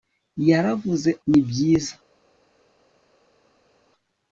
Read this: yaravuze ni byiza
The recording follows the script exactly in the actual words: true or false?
true